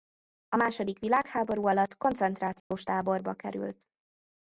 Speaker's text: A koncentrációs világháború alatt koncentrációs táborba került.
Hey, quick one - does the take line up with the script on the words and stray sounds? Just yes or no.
no